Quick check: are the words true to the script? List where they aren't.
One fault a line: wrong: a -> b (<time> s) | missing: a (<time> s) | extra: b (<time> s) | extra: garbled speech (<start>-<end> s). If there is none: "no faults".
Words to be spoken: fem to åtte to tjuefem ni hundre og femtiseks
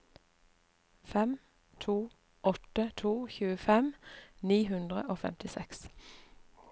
no faults